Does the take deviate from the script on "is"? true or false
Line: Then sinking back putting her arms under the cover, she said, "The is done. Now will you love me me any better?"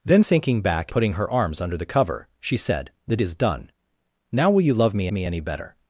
false